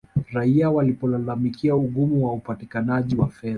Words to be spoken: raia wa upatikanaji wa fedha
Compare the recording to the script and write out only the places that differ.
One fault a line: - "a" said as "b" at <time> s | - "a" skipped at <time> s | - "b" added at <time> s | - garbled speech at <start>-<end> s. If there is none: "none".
- "walipolalamikia ugumu" added at 0.7 s